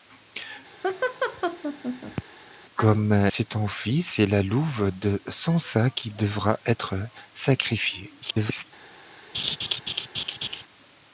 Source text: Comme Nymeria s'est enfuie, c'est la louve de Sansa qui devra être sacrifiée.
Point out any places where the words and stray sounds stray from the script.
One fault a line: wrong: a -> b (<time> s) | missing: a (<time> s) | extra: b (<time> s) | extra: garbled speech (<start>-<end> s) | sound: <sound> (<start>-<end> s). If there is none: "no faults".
sound: laugh (0.8-2.2 s)
missing: Nymeria (3.1 s)
extra: garbled speech (8.2-8.6 s)
sound: laugh (9.3-10.6 s)